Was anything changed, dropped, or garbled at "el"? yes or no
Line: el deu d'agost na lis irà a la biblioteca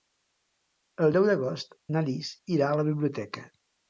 no